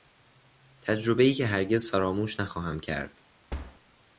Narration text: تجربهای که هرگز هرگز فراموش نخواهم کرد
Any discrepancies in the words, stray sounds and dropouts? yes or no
yes